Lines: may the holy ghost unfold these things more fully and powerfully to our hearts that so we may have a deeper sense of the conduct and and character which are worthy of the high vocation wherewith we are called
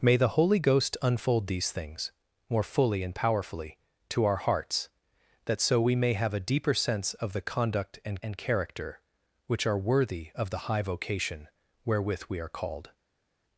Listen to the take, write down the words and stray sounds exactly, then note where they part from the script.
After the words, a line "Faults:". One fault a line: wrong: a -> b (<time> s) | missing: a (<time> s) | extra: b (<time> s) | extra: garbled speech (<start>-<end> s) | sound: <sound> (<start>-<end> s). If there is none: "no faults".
may the holy ghost unfold these things more fully and powerfully to our hearts that so we may have a deeper sense of the conduct and and character which are worthy of the high vocation wherewith we are called
Faults:
no faults